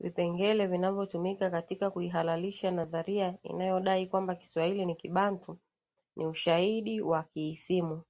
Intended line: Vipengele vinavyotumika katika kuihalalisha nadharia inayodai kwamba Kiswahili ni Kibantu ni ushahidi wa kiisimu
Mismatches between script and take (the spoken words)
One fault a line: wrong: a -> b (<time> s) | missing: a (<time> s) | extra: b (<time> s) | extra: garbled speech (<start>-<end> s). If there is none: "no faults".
no faults